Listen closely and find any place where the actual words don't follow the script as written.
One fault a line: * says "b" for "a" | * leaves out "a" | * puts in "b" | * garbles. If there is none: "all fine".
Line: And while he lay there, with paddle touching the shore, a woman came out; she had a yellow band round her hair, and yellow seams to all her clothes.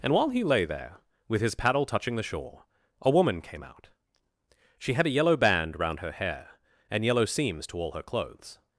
* puts in "his"